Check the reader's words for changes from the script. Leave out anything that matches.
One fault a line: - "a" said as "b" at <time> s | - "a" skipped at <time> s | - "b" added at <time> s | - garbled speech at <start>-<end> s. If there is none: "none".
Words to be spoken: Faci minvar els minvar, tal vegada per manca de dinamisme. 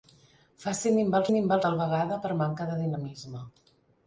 none